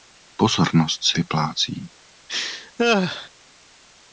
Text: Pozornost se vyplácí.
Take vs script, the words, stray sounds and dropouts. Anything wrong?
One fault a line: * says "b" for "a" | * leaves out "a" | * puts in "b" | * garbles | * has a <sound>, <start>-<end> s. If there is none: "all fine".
* has a laugh, 2.3-3.3 s